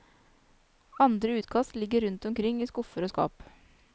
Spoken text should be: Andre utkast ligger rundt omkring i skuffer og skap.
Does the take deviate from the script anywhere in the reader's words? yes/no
no